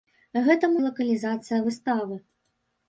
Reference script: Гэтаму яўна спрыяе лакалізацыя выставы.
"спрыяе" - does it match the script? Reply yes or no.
no